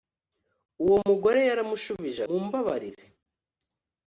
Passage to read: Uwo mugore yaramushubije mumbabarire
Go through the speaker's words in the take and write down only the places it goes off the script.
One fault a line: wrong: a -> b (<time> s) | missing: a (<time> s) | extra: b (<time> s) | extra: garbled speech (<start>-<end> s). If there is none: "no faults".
no faults